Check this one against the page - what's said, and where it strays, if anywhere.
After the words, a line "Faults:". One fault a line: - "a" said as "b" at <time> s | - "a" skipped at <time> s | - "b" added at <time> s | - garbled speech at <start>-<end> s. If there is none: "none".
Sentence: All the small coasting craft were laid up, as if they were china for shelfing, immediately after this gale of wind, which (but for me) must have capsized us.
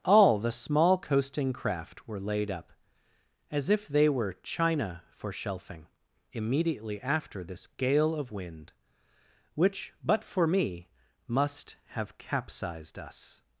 All the small coasting craft were laid up, as if they were china for shelfing, immediately after this gale of wind, which (but for me) must have capsized us.
Faults:
none